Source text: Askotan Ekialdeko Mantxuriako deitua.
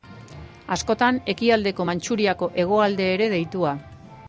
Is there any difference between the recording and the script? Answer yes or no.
yes